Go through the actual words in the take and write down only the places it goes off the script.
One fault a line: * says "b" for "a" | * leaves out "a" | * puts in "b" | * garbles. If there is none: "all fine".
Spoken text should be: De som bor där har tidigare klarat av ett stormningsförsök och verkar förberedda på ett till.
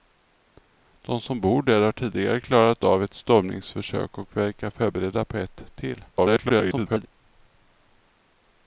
* garbles